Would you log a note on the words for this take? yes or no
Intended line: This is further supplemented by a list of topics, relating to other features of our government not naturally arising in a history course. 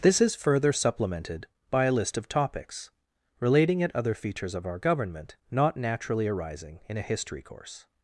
yes